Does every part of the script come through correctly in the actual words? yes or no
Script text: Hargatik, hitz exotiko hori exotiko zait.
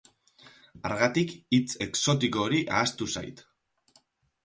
no